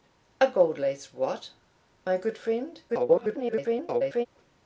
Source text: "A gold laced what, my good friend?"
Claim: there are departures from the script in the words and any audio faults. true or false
true